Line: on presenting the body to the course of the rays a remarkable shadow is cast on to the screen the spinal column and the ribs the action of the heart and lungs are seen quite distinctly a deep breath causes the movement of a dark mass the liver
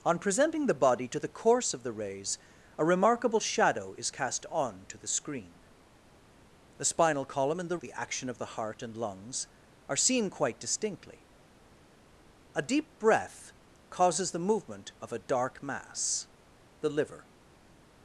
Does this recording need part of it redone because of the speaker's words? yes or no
yes